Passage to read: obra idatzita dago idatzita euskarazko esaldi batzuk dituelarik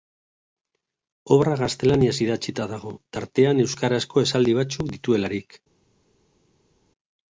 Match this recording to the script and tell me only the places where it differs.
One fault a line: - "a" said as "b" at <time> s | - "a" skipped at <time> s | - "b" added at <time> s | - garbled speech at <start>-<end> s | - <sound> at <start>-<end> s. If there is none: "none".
- "gaztelaniaz" added at 1.6 s
- "idatzita" said as "tartean" at 3.2 s